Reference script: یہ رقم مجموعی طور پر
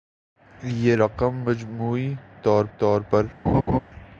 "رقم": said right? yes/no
yes